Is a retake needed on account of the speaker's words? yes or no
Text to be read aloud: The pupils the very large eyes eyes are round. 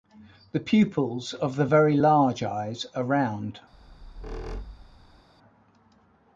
yes